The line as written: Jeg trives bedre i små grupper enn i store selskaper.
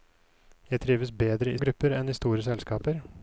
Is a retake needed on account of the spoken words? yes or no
yes